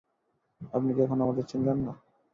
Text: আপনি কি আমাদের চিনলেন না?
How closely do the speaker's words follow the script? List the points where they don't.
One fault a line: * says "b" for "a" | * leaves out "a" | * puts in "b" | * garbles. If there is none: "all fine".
* puts in "এখনো"